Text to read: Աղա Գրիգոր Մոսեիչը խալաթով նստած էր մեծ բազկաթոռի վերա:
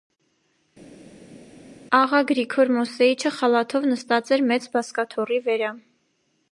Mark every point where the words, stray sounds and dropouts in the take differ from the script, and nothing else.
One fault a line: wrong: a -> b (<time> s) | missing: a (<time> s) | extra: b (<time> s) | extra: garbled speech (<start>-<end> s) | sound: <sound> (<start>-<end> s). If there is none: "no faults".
no faults